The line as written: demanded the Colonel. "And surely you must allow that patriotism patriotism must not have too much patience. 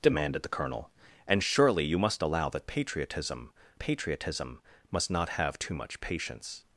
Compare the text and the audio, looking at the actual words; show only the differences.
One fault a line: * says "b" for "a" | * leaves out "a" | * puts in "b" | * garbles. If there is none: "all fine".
all fine